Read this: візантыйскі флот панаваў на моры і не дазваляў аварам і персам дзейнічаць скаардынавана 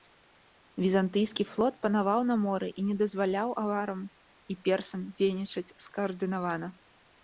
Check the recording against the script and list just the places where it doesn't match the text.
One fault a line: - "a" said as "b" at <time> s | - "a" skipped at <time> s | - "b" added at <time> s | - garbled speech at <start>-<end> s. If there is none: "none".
none